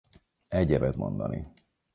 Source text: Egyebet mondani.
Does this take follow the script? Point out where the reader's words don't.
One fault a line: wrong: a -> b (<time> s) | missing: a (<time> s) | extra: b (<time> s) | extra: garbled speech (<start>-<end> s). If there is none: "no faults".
no faults